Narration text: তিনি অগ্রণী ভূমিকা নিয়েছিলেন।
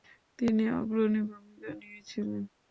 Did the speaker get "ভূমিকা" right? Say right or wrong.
right